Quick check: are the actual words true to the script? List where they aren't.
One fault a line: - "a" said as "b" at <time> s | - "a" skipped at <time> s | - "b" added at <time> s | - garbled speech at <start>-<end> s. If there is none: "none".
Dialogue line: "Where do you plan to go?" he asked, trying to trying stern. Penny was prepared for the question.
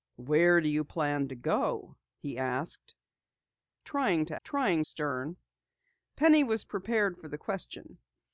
none